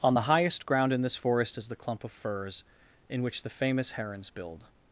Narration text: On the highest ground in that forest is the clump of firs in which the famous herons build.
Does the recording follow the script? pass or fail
fail